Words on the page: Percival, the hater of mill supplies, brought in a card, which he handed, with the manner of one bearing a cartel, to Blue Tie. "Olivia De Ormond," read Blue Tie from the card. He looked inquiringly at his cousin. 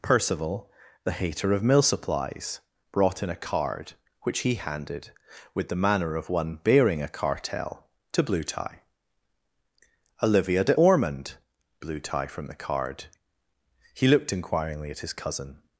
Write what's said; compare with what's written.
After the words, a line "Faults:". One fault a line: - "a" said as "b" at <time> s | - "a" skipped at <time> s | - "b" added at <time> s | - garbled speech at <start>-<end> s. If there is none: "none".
Percival, the hater of mill supplies, brought in a card, which he handed, with the manner of one bearing a cartel, to Blue Tie. "Olivia De Ormond," Blue Tie from the card. He looked inquiringly at his cousin.
Faults:
- "read" skipped at 11.3 s